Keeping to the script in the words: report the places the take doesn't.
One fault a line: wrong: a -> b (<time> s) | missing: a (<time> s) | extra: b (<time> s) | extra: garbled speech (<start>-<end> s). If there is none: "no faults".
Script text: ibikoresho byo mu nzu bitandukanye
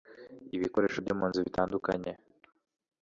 no faults